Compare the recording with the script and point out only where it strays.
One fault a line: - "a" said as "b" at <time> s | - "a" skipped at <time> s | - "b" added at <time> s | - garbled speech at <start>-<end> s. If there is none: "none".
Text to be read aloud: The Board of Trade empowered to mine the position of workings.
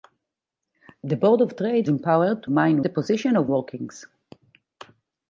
none